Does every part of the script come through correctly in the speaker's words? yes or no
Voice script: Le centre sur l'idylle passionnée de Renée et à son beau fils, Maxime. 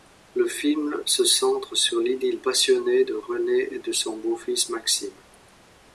no